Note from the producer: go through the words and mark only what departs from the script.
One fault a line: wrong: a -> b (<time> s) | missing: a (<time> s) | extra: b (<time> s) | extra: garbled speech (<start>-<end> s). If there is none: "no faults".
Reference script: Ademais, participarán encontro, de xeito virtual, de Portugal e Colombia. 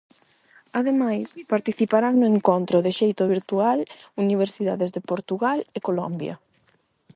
extra: no (2.2 s)
extra: universidades (4.2 s)